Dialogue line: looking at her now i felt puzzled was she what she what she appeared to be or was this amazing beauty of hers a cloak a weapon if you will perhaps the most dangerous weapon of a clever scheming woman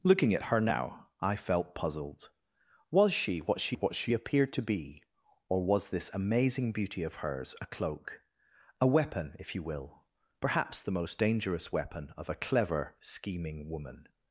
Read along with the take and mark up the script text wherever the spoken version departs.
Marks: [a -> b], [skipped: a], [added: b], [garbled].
looking at her now i felt puzzled was she what she what she appeared to be or was this amazing beauty of hers a cloak a weapon if you will perhaps the most dangerous weapon of a clever scheming woman